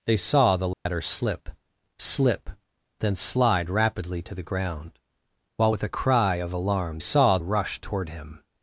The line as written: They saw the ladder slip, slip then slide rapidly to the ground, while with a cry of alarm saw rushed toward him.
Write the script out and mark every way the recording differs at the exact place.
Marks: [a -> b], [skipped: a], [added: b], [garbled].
They saw the ladder slip, slip then slide rapidly to the ground, while with a cry of alarm saw rushed toward him.